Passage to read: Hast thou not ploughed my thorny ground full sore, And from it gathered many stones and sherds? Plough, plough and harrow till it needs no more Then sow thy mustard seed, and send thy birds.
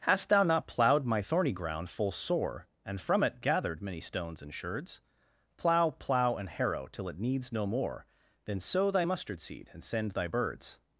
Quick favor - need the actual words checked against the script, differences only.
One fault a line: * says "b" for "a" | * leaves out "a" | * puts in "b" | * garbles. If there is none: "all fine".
all fine